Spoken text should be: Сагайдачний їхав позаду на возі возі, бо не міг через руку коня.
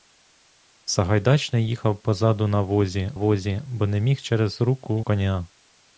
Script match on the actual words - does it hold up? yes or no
yes